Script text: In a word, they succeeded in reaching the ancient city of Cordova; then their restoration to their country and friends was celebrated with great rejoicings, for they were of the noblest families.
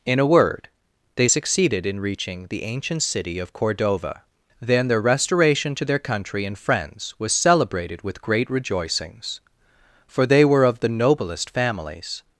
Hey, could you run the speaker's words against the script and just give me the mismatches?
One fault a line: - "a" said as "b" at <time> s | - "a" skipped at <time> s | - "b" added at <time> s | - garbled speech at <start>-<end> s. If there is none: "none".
none